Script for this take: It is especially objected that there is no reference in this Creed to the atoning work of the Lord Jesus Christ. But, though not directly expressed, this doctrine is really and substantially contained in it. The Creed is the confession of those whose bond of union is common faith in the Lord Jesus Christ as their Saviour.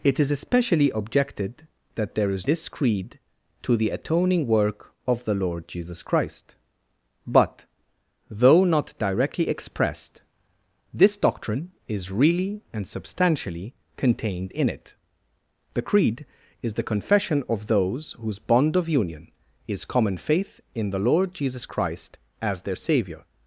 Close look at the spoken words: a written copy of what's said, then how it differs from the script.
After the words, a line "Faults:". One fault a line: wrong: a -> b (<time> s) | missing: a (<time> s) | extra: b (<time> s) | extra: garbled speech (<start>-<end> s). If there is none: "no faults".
It is especially objected that there is this Creed to the atoning work of the Lord Jesus Christ. But, though not directly expressed, this doctrine is really and substantially contained in it. The Creed is the confession of those whose bond of union is common faith in the Lord Jesus Christ as their Saviour.
Faults:
missing: no reference in (2.5 s)